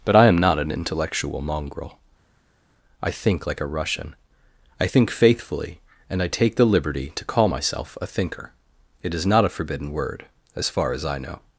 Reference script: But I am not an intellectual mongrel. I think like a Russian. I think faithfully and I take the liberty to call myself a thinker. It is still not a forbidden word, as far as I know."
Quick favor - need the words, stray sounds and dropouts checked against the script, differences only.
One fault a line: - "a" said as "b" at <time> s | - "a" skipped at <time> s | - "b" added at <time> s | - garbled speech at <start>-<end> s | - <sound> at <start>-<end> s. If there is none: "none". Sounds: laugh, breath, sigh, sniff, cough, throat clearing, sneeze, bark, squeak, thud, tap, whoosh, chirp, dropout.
- "still" skipped at 9.2 s